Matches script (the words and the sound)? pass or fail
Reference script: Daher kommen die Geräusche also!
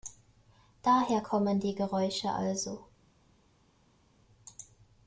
pass